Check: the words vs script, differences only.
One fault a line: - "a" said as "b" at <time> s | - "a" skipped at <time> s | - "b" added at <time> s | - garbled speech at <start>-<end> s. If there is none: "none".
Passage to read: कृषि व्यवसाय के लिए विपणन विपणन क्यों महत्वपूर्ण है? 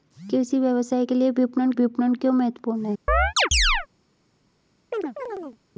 none